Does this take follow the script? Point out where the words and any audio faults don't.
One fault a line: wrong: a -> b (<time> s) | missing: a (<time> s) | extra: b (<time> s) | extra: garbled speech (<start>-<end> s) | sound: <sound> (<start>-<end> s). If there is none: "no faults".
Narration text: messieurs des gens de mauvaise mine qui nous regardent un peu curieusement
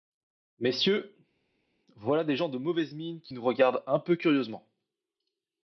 extra: voilà (2.0 s)